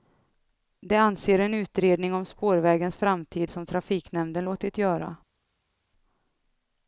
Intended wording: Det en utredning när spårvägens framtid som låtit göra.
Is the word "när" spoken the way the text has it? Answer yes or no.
no